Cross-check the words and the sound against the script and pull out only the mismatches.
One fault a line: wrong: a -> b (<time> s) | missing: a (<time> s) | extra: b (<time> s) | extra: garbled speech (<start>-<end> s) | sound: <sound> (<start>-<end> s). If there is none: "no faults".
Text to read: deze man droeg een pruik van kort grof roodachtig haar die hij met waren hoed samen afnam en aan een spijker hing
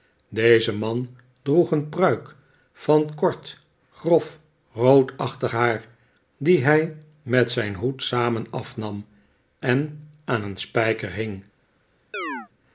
wrong: waren -> zijn (7.5 s)
sound: chirp (12.1-12.5 s)